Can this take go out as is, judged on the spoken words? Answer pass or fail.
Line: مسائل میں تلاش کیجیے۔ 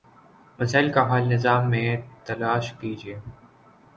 fail